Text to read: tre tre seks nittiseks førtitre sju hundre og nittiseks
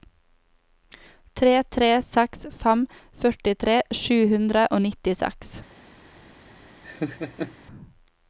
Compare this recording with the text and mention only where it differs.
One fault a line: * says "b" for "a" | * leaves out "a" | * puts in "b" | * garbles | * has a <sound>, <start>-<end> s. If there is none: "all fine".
* says "fem" for "nittiseks"
* has a laugh, 6.8-7.6 s